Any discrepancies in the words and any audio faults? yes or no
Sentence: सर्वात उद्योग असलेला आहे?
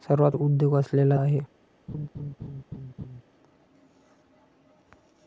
yes